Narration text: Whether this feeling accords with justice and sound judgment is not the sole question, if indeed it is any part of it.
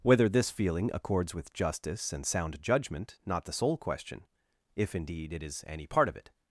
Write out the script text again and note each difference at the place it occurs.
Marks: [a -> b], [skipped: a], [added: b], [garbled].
Whether this feeling accords with justice and sound judgment [skipped: is] not the sole question, if indeed it is any part of it.